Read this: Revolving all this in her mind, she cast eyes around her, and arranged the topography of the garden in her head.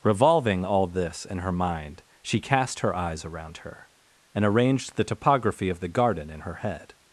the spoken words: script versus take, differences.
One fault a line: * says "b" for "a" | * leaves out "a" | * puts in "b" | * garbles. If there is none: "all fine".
* puts in "her"